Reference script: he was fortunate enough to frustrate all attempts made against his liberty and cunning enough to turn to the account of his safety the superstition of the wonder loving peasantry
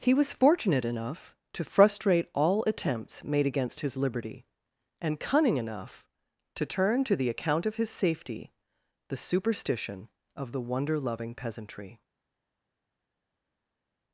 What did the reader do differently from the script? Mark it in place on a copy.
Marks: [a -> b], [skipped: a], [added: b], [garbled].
he was fortunate enough to frustrate all attempts made against his liberty and cunning enough to turn to the account of his safety the superstition of the wonder loving peasantry